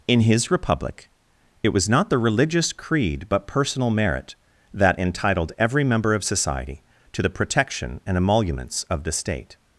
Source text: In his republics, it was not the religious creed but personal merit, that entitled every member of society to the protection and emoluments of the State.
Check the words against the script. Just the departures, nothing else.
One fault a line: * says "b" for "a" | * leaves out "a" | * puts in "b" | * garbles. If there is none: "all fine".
* says "republic" for "republics"